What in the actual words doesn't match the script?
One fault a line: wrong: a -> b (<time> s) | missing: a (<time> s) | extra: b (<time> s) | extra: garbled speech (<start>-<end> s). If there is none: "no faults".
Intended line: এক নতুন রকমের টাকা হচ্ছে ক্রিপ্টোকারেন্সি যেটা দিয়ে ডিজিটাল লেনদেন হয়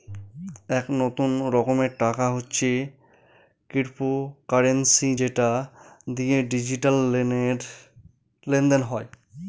no faults